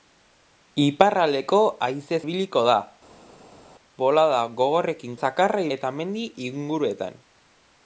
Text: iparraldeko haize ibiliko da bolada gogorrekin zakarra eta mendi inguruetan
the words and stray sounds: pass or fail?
pass